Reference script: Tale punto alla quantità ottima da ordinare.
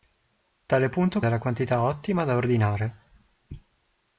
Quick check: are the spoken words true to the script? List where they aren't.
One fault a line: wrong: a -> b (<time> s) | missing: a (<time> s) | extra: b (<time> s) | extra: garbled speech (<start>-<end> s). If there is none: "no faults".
no faults